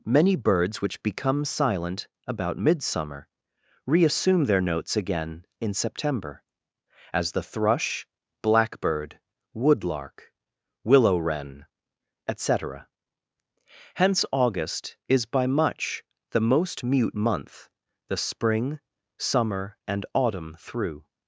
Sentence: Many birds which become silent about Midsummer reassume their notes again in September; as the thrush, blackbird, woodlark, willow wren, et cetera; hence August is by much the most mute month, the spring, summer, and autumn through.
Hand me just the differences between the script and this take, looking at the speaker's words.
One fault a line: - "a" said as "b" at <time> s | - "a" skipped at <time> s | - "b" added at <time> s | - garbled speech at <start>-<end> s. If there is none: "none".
none